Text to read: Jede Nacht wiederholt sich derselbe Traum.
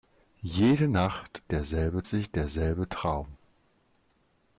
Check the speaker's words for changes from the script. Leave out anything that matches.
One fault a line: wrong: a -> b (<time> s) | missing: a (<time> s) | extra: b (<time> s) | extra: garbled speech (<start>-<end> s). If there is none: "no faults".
wrong: wiederholt -> derselbe (1.5 s)